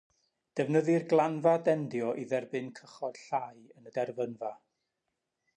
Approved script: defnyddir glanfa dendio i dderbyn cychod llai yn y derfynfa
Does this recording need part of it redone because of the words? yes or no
no